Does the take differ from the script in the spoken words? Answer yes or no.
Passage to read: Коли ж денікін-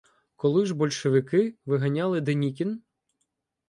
yes